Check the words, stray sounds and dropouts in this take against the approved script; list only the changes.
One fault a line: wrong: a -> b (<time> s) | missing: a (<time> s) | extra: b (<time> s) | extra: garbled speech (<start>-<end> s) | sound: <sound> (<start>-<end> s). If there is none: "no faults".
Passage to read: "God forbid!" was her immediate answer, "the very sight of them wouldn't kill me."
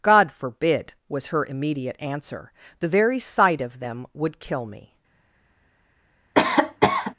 wrong: wouldn't -> would (4.2 s)
sound: cough (6.3-7.1 s)